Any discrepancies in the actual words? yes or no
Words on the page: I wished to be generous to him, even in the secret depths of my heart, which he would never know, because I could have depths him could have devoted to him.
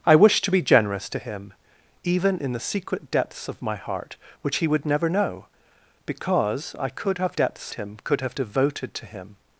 no